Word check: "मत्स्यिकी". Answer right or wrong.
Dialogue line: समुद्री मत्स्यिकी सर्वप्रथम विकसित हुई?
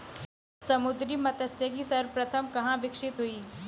right